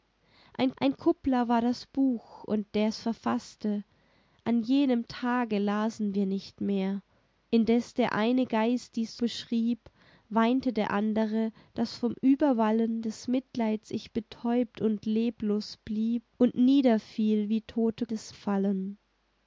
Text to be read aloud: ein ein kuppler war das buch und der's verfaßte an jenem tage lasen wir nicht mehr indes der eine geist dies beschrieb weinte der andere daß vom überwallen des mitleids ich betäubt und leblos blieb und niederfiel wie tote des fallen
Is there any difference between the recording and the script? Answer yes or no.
no